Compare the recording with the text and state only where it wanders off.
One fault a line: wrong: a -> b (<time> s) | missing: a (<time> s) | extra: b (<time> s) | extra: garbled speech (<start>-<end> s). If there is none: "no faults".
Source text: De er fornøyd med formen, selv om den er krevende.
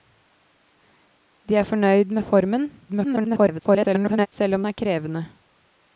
extra: garbled speech (2.9-4.3 s)
missing: den (4.6 s)